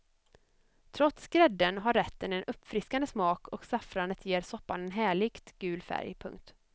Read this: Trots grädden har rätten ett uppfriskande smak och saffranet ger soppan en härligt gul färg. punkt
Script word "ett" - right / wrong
wrong